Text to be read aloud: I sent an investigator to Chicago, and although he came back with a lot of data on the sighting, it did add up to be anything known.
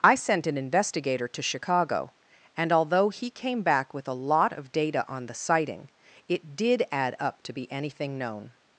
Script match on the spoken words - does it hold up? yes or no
yes